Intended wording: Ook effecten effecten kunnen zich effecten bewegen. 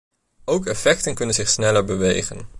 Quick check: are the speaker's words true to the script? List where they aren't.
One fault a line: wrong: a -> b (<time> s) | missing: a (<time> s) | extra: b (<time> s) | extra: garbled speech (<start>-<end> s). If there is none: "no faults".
missing: effecten (1.1 s)
wrong: effecten -> sneller (1.5 s)